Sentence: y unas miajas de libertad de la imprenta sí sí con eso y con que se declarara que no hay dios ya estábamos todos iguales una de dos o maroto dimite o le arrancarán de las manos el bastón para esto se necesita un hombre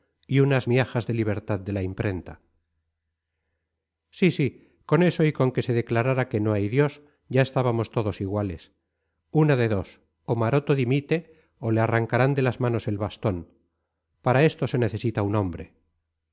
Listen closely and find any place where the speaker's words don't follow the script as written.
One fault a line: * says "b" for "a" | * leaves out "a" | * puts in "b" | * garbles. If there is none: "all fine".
all fine